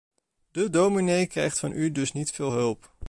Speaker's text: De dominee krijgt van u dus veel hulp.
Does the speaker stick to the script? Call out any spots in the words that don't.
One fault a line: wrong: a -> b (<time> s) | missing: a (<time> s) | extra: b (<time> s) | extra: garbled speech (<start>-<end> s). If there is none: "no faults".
extra: niet (2.1 s)